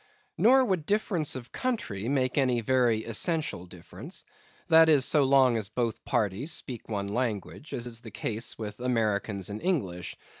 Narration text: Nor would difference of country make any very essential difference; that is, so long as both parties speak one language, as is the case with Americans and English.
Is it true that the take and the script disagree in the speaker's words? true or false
false